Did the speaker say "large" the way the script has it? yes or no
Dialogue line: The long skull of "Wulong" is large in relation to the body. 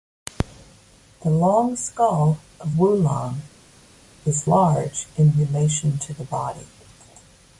yes